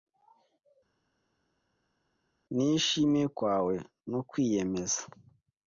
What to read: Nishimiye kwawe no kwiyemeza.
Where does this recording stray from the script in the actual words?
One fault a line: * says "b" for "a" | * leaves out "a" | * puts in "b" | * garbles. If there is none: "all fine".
all fine